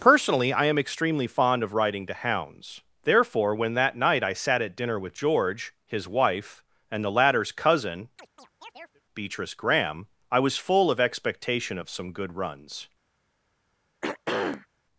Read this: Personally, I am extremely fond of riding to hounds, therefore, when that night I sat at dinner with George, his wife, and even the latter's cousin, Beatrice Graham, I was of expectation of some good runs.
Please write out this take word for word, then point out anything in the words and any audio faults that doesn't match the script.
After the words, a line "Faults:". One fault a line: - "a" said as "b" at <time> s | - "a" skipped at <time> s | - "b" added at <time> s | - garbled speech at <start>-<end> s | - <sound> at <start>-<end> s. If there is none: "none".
Personally, I am extremely fond of riding to hounds, therefore, when that night I sat at dinner with George, his wife, and the latter's cousin, Beatrice Graham, I was full of expectation of some good runs.
Faults:
- "even" skipped at 7.0 s
- chirp at 8.2-9.0 s
- "full" added at 10.6 s
- throat clearing at 14.0-14.7 s